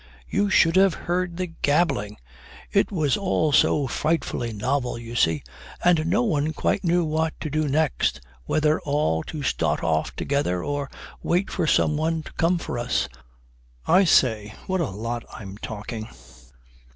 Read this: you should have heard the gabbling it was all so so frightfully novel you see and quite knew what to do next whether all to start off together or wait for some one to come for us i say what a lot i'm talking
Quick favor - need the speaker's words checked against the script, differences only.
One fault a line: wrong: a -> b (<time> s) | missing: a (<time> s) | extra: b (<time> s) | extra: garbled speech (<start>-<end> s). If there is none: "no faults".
missing: so (3.9 s)
extra: no one (6.1 s)